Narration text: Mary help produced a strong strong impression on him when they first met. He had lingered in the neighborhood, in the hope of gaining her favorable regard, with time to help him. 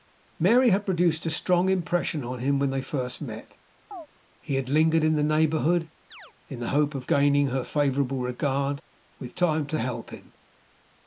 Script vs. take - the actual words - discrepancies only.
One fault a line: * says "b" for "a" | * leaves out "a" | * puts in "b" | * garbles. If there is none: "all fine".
* says "had" for "help"
* leaves out "strong"